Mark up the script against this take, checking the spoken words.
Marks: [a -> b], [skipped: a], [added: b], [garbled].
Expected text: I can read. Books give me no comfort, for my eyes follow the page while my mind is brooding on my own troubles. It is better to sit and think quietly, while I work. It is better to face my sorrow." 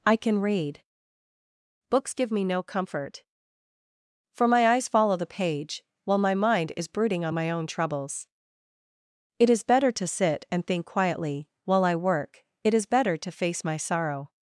I can read. Books give me no comfort, for my eyes follow the page while my mind is brooding on my own troubles. It is better to sit and think quietly, while I work. It is better to face my sorrow."